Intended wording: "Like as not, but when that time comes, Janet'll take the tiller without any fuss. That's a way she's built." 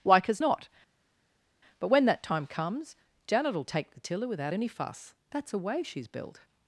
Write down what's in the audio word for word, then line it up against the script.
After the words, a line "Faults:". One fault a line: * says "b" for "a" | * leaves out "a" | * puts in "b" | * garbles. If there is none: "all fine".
"Like as not, but when that time comes, Janet'll take the tiller without any fuss. That's a way she's built."
Faults:
all fine